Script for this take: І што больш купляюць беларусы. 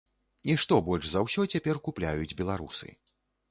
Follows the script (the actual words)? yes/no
no